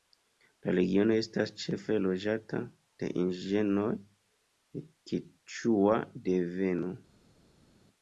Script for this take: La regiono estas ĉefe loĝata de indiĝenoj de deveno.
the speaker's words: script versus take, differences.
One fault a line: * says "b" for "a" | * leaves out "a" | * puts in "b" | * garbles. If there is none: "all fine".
* puts in "keĉua"